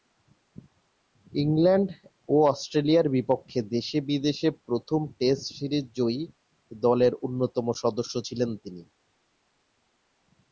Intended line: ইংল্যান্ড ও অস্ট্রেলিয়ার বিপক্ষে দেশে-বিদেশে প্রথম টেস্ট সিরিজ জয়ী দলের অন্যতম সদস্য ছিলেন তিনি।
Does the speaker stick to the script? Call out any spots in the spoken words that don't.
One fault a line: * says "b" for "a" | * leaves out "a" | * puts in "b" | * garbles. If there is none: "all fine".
all fine